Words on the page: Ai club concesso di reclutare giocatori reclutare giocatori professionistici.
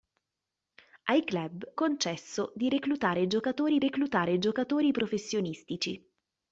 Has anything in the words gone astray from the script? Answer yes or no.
no